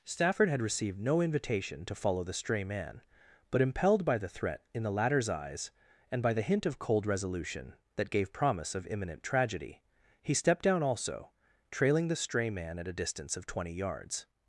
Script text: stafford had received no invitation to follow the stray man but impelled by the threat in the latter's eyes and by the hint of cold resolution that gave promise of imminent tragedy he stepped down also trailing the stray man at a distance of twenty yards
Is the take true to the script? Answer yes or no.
yes